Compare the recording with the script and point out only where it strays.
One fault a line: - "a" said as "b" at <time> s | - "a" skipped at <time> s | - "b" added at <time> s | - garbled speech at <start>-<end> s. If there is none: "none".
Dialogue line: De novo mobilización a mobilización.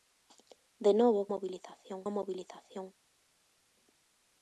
none